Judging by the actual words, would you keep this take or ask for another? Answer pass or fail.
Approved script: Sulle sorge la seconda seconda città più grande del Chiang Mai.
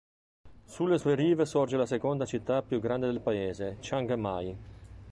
fail